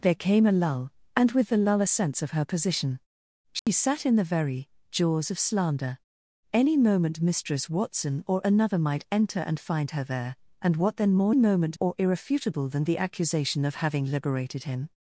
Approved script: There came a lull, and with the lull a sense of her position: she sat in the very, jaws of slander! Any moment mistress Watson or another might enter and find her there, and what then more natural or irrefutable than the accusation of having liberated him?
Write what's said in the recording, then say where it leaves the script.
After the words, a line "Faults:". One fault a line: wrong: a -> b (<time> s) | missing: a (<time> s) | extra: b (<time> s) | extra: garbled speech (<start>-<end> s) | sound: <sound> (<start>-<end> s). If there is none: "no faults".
There came a lull, and with the lull a sense of her position: she sat in the very, jaws of slander! Any moment mistress Watson or another might enter and find her there, and what then more moment or irrefutable than the accusation of having liberated him?
Faults:
sound: dropout (3.6-3.7 s)
wrong: natural -> moment (11.3 s)